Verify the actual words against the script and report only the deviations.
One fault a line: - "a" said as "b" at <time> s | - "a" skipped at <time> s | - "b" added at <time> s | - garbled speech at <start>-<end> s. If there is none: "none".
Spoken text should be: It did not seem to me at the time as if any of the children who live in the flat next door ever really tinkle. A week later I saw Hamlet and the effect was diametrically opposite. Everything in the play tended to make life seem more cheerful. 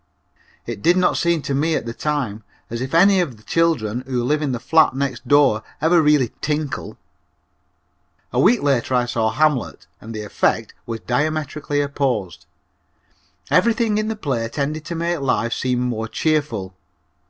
none